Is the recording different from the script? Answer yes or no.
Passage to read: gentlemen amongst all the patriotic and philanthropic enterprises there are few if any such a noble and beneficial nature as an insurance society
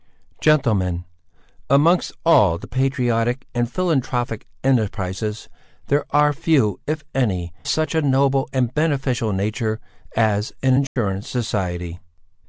no